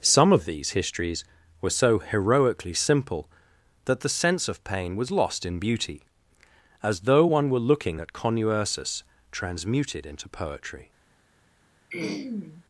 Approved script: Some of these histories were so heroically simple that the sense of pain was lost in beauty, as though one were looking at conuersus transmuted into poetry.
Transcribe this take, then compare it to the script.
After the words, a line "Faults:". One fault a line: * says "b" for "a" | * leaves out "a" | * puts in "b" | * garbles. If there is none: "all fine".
Some of these histories were so heroically simple that the sense of pain was lost in beauty, as though one were looking at conuersus transmuted into poetry.
Faults:
all fine